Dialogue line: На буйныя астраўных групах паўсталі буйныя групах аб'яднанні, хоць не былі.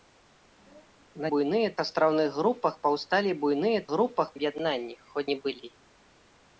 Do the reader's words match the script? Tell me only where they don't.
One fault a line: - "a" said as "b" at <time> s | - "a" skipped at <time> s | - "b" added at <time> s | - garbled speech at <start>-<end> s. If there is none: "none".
none